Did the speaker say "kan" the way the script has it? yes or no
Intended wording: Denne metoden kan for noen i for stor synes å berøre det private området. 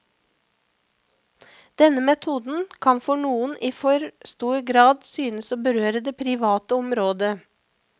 yes